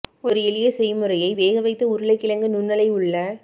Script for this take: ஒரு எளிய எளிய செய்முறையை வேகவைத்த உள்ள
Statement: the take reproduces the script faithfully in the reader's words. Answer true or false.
false